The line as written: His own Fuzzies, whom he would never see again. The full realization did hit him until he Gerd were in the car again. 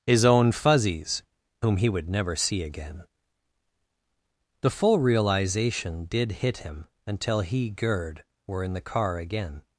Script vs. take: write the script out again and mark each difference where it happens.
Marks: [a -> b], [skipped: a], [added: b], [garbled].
His own Fuzzies, whom he would never see again. The full realization did hit him until he Gerd were in the car again.